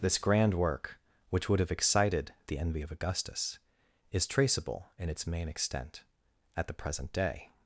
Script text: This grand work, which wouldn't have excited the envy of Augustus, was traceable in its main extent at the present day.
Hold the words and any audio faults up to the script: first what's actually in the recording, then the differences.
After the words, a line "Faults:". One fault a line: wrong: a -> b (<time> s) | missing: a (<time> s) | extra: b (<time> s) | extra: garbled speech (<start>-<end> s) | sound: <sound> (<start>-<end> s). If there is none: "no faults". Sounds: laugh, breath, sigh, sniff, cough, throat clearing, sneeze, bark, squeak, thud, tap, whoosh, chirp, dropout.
This grand work, which would have excited the envy of Augustus, is traceable in its main extent at the present day.
Faults:
wrong: wouldn't -> would (1.5 s)
wrong: was -> is (4.1 s)